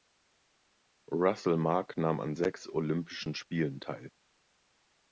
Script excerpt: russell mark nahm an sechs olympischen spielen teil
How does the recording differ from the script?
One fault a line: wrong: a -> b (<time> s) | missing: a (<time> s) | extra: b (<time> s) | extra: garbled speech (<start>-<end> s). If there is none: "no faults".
no faults